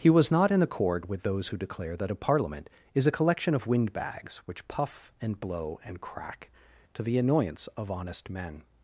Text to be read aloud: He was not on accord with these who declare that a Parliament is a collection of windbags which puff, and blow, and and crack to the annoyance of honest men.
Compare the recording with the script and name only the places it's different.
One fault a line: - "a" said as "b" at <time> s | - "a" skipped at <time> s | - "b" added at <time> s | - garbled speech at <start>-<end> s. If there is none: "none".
- "on" said as "in" at 0.5 s
- "these" said as "those" at 1.2 s
- "and" skipped at 6.0 s